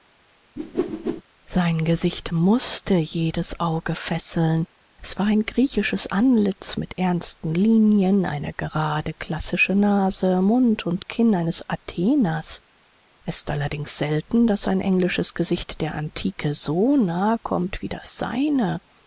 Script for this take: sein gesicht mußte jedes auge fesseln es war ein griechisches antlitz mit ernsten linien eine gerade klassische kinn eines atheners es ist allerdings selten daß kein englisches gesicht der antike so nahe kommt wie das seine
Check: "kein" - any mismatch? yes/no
yes